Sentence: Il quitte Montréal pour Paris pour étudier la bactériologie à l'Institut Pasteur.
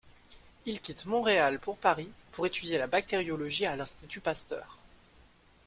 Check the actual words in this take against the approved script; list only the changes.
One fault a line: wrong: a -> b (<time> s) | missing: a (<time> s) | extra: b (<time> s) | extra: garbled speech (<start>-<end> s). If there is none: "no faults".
no faults